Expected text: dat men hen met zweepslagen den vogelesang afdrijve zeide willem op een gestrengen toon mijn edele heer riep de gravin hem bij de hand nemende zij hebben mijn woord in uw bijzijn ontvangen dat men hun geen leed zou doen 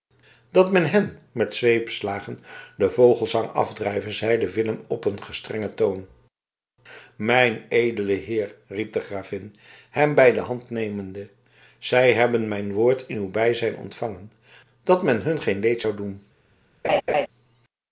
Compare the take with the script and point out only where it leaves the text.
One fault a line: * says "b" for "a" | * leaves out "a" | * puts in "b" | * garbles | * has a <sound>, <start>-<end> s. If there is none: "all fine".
* has a laugh, 16.8-17.3 s